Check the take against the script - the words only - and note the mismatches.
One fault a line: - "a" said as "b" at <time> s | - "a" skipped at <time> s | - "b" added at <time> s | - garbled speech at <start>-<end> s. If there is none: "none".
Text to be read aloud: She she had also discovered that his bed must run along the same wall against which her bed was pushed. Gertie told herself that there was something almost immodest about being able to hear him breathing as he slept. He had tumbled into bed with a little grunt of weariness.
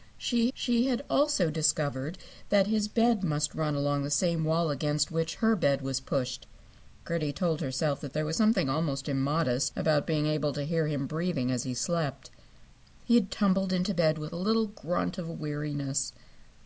none